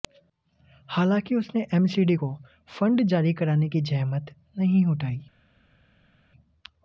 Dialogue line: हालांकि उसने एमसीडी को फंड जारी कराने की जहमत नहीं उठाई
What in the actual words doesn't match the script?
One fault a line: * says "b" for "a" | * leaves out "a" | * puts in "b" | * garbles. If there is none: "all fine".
all fine